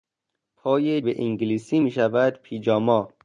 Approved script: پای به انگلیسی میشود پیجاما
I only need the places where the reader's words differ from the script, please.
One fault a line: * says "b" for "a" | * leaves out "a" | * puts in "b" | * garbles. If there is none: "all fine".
all fine